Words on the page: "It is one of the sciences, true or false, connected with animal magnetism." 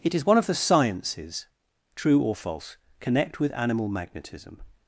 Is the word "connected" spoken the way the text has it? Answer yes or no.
no